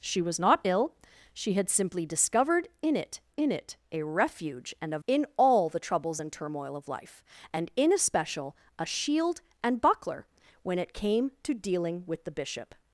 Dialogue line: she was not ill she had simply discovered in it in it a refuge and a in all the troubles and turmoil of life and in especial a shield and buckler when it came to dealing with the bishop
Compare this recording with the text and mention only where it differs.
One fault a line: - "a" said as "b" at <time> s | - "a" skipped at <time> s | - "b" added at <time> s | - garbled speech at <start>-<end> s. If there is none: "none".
none